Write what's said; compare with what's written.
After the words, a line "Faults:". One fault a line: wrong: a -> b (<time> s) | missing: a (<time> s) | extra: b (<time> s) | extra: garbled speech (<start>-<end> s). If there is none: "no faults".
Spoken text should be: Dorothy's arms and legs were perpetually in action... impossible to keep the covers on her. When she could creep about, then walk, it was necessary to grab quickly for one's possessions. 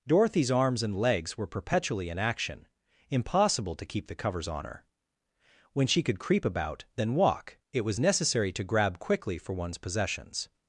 Dorothy's arms and legs were perpetually in action... impossible to keep the covers on her. When she could creep about, then walk, it was necessary to grab quickly for one's possessions.
Faults:
no faults